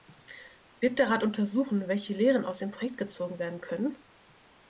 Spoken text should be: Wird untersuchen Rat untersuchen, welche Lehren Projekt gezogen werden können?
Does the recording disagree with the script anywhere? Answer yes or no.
yes